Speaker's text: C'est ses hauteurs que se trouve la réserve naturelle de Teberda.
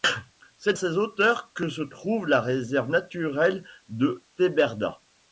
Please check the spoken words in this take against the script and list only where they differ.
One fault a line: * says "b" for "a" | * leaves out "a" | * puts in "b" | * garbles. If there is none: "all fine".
all fine